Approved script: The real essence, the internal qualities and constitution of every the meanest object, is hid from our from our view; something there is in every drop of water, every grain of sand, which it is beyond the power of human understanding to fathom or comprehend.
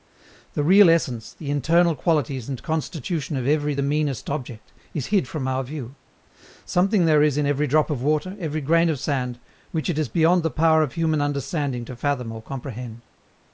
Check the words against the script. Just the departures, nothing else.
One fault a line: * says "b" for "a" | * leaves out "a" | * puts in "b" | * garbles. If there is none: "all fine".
* leaves out "from our"